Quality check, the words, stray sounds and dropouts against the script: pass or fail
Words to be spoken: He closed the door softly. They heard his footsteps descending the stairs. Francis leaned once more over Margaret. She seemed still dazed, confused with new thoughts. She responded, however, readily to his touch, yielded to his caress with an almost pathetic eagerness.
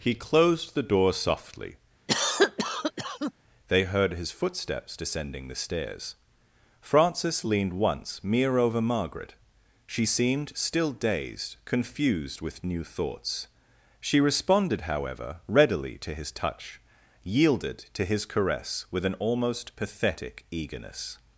fail